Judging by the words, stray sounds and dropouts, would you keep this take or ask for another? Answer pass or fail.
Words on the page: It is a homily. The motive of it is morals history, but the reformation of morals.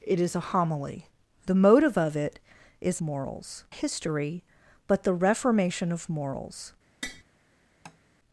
fail